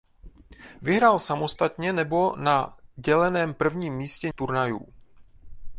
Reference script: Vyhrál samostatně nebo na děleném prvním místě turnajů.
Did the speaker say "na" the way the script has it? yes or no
yes